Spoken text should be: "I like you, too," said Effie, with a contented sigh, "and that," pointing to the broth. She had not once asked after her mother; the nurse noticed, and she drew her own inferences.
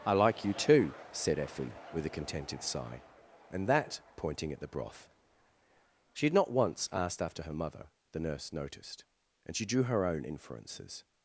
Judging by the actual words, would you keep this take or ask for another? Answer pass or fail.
fail